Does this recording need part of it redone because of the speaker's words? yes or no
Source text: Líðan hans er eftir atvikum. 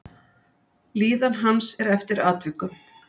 no